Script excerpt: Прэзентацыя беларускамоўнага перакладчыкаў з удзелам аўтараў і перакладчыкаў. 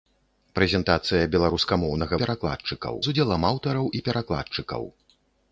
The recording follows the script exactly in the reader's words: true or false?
true